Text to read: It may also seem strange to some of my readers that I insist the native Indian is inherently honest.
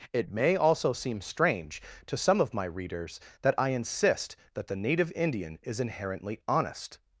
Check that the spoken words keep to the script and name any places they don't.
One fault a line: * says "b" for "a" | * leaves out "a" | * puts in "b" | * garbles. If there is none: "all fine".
* puts in "that"